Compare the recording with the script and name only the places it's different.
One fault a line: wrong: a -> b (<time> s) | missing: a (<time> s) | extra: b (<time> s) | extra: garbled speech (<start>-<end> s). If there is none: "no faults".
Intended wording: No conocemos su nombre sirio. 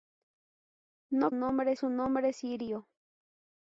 wrong: conocemos -> nombre (1.3 s)